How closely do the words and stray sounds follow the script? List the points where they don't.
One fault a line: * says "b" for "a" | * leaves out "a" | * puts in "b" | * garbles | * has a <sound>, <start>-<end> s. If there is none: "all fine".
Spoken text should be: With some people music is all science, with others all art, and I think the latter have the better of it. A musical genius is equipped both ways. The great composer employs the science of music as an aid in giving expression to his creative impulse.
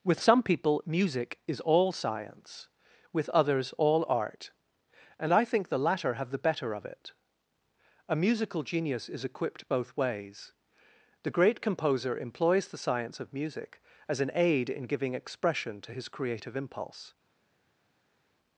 all fine